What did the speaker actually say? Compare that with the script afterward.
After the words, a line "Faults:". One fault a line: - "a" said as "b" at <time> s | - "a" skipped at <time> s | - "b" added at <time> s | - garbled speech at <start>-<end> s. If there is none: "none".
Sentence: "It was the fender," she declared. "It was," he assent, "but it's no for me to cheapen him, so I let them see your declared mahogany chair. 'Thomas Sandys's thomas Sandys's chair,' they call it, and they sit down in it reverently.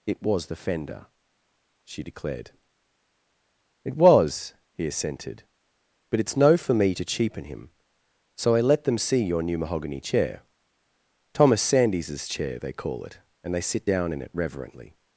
"It was the fender," she declared. "It was," he assented, "but it's no for me to cheapen him, so I let them see your new mahogany chair. 'Thomas Sandys's chair,' they call it, and they sit down in it reverently.
Faults:
- "assent" said as "assented" at 4.9 s
- "declared" said as "new" at 9.4 s
- "thomas Sandys's" skipped at 12.3 s